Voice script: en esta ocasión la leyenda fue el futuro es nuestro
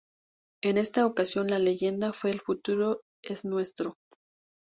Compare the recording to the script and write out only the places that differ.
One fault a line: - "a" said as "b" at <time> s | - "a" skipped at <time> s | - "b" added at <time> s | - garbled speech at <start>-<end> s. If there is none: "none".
none